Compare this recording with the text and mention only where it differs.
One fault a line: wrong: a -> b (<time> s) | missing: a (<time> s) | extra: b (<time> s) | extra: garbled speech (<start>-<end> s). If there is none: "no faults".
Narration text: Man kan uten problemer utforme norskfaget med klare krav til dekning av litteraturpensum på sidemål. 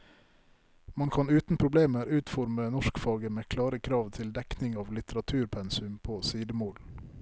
no faults